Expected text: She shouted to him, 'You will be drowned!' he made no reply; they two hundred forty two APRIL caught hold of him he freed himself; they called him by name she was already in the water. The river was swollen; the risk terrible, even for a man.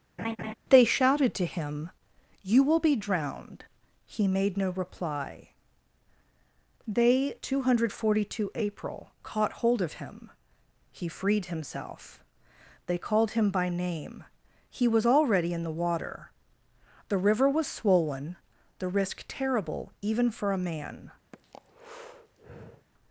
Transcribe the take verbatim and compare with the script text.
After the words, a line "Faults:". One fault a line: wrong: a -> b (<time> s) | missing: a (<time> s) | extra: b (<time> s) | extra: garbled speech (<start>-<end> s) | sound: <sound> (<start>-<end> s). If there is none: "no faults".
They shouted to him, 'You will be drowned!' he made no reply; they two hundred forty two APRIL caught hold of him he freed himself; they called him by name he was already in the water. The river was swollen; the risk terrible, even for a man.
Faults:
sound: laugh (0.2-0.5 s)
wrong: She -> They (0.7 s)
wrong: she -> he (14.7 s)
sound: breath (21.3-22.9 s)